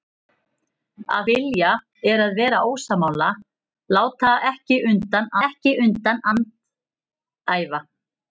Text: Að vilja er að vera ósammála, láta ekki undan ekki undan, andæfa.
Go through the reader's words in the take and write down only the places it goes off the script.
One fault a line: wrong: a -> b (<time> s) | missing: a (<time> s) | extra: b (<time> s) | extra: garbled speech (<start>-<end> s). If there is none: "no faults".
no faults